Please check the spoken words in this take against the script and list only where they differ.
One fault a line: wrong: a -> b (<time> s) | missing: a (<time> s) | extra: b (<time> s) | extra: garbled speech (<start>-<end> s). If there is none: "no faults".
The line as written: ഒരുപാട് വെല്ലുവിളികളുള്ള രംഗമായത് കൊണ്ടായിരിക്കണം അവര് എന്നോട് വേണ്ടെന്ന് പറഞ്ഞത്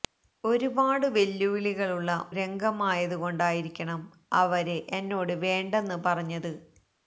no faults